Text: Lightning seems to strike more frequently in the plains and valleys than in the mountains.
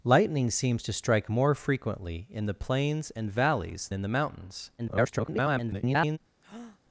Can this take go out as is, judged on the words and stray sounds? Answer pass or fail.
fail